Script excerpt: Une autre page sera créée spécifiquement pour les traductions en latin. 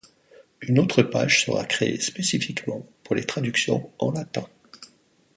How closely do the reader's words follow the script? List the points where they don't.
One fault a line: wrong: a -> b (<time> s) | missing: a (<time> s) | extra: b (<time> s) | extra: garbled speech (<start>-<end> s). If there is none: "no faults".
no faults